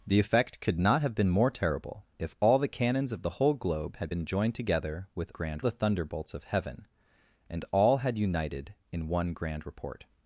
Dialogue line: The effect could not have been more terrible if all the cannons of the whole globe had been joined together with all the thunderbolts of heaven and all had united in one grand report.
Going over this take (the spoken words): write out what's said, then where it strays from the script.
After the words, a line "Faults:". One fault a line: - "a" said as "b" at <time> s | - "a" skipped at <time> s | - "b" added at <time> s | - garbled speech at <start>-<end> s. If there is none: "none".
The effect could not have been more terrible if all the cannons of the whole globe had been joined together with grand the thunderbolts of heaven and all had united in one grand report.
Faults:
- "all" said as "grand" at 5.3 s